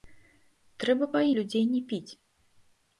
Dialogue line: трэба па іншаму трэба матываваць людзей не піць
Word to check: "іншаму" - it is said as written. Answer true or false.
false